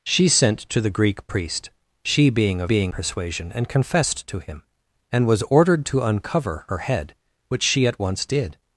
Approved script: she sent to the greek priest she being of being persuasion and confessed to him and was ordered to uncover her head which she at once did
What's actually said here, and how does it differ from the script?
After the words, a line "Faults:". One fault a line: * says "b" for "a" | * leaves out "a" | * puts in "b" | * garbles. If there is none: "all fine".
she sent to the greek priest she being of being persuasion and confessed to him and was ordered to uncover her head which she at once did
Faults:
all fine